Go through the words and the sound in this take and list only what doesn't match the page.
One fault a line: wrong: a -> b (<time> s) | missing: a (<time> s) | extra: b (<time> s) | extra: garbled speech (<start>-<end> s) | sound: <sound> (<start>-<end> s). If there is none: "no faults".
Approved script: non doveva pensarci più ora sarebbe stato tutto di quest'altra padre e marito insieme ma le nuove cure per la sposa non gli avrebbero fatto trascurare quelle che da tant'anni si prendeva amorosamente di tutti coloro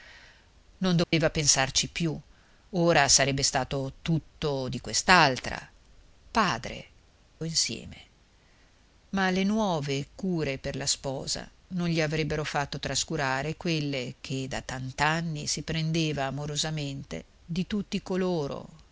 sound: dropout (1.0-1.1 s)
missing: e marito (6.8 s)